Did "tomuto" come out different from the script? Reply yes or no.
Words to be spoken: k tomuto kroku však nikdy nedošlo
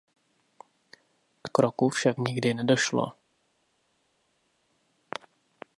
yes